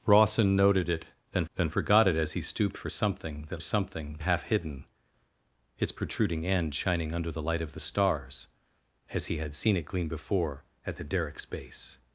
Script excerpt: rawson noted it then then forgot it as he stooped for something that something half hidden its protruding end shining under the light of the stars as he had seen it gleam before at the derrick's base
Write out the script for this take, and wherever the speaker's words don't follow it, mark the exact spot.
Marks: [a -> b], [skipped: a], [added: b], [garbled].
rawson noted it then then forgot it as he stooped for something that something half hidden its protruding end shining under the light of the stars as he had seen it gleam before at the derrick's base